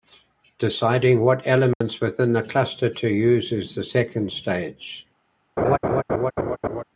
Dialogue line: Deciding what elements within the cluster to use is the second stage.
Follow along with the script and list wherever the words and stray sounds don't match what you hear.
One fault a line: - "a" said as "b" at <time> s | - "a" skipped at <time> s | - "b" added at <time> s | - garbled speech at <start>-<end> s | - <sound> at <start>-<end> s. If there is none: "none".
- dropout at 1.7-1.8 s
- laugh at 5.6-6.8 s